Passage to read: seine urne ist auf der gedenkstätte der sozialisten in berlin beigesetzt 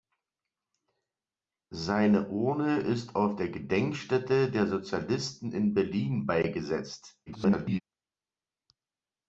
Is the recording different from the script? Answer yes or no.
yes